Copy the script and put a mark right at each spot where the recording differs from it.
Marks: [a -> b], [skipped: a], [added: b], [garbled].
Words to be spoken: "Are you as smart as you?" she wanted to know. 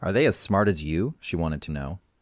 "Are [you -> they] as smart as you?" she wanted to know.